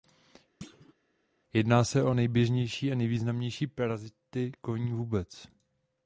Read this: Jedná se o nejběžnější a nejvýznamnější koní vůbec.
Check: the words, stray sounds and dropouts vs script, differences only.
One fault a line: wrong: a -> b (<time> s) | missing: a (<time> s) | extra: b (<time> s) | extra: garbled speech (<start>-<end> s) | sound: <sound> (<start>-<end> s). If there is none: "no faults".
sound: thud (0.6-0.9 s)
extra: parazity (3.7 s)